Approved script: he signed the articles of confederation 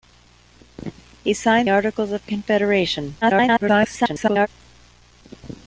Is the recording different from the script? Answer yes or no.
yes